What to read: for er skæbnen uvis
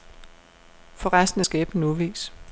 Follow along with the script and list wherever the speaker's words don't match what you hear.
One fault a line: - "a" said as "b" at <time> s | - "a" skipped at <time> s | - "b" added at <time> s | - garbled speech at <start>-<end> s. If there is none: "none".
- "resten" added at 1.1 s